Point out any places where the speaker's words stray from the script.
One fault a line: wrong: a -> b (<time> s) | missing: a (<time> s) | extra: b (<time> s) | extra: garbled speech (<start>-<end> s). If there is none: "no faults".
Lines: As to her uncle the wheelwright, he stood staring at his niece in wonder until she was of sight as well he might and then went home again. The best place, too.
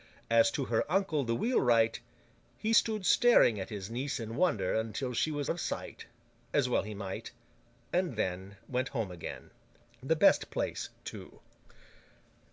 no faults